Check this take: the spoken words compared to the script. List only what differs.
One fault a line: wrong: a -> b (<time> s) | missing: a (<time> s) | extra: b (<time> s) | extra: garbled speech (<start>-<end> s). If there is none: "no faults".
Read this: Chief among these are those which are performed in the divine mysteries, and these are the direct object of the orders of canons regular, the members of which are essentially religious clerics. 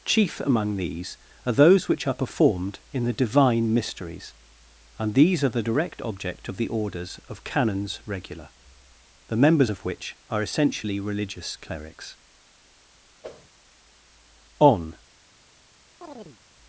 extra: On (14.6 s)